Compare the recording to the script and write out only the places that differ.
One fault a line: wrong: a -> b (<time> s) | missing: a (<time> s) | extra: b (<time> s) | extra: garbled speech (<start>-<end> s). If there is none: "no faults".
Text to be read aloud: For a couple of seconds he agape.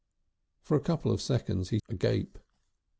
no faults